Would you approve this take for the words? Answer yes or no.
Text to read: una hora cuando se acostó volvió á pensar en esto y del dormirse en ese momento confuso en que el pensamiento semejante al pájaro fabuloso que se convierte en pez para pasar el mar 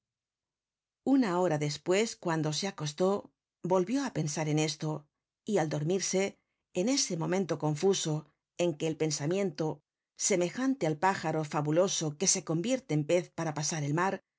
no